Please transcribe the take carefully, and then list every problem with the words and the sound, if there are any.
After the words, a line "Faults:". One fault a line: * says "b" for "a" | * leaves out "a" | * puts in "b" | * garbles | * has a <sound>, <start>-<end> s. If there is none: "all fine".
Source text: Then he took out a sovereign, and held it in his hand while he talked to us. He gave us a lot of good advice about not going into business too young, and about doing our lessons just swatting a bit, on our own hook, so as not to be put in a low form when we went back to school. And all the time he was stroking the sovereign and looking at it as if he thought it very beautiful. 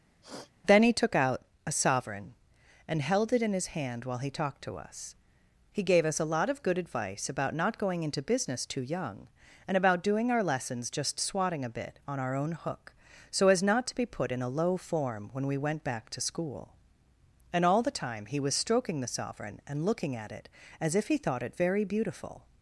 Then he took out a sovereign, and held it in his hand while he talked to us. He gave us a lot of good advice about not going into business too young, and about doing our lessons just swatting a bit, on our own hook, so as not to be put in a low form when we went back to school. And all the time he was stroking the sovereign and looking at it as if he thought it very beautiful.
Faults:
* has a sniff, 0.2-0.5 s